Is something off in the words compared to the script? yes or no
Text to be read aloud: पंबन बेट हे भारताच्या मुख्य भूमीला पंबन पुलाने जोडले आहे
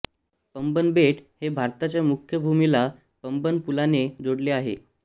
no